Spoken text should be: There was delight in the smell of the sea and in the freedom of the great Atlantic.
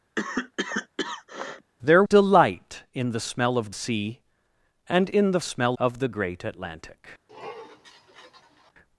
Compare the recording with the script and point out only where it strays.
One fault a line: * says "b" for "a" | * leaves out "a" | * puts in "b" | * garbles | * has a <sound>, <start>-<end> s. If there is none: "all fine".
* has a cough, 0.2-1.7 s
* leaves out "was"
* leaves out "the"
* says "smell" for "freedom"
* has a sniff, 7.3-8.7 s